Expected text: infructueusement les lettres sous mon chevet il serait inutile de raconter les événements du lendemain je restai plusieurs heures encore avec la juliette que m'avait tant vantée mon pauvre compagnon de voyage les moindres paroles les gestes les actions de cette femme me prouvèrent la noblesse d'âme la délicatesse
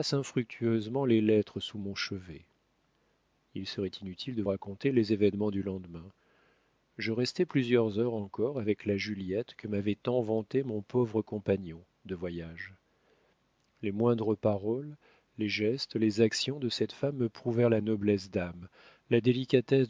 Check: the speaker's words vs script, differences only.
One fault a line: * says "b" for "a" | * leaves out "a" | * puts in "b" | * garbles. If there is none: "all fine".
all fine